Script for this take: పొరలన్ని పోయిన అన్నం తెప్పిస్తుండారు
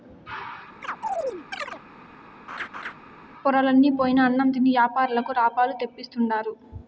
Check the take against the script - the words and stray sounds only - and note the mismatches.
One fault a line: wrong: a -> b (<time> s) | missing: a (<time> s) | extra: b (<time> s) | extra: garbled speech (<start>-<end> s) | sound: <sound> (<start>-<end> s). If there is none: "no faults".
sound: chirp (0.8-1.8 s)
sound: laugh (2.5-2.9 s)
extra: తిని యాపారులకు లాభాలు (4.5 s)